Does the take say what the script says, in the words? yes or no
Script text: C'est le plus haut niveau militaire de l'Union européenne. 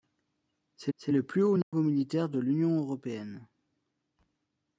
no